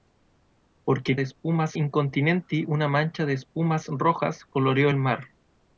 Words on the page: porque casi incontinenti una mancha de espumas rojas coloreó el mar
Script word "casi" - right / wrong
wrong